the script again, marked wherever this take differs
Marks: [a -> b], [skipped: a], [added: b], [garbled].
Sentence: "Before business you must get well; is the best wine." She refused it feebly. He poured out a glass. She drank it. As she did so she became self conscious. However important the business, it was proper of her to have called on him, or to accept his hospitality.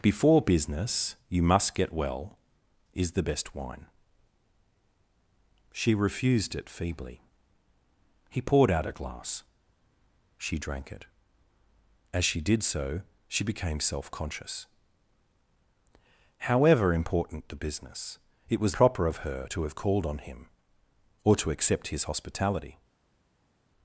"Before business you must get well; is the best wine." She refused it feebly. He poured out a glass. She drank it. As she did so she became self conscious. However important the business, it was proper of her to have called on him, or to accept his hospitality.